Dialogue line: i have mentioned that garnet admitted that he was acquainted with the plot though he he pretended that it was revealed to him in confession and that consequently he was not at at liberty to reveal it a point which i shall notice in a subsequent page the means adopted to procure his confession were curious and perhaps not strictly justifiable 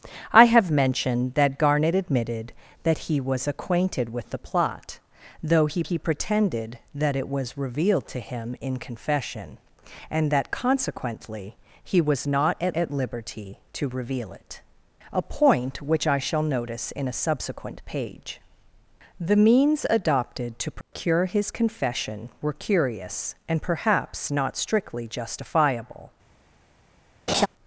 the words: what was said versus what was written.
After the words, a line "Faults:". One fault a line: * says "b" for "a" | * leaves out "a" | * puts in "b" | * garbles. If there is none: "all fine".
i have mentioned that garnet admitted that he was acquainted with the plot though he he pretended that it was revealed to him in confession and that consequently he was not at at liberty to reveal it a point which i shall notice in a subsequent page the means adopted to procure his confession were curious and perhaps not strictly justifiable
Faults:
all fine